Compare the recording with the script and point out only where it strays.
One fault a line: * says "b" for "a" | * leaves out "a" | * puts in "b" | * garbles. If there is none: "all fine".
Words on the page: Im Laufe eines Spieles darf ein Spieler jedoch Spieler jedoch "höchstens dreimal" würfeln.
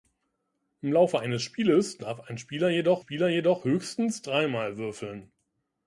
all fine